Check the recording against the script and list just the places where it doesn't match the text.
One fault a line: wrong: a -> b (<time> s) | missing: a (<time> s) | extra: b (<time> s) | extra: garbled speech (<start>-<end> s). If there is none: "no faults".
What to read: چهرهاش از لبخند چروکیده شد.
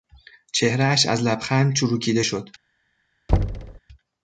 no faults